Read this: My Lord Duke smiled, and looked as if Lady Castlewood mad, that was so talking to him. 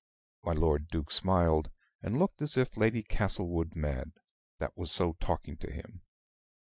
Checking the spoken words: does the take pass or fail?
pass